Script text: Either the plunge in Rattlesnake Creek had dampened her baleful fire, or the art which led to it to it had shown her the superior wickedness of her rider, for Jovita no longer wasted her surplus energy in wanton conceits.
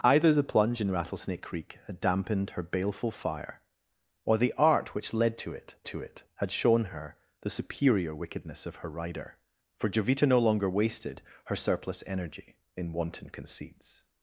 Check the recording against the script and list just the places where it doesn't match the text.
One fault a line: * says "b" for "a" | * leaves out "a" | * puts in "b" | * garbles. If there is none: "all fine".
all fine